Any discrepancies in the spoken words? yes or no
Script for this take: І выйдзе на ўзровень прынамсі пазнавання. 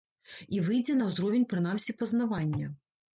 no